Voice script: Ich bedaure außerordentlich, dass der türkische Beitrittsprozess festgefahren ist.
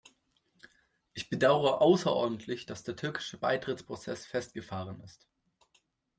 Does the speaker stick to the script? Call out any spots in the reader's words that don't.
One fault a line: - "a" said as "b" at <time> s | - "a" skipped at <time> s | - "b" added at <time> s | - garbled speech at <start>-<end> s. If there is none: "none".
none